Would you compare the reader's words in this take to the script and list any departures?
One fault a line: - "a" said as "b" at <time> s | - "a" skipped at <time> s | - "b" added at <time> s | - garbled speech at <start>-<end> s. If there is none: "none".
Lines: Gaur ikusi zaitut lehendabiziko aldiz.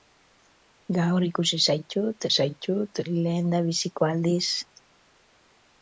- "zaitut" added at 2.4 s